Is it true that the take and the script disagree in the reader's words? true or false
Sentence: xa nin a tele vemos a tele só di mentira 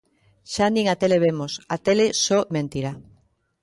true